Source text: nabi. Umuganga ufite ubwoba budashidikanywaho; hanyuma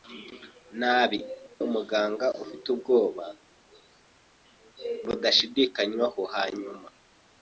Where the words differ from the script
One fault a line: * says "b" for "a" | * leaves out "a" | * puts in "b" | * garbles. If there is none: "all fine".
all fine